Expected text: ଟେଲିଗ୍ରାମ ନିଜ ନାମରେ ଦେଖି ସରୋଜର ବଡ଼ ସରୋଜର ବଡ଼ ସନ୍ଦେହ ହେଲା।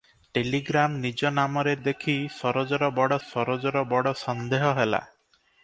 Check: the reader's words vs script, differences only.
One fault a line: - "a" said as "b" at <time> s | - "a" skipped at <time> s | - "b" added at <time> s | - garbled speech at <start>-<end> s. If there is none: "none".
none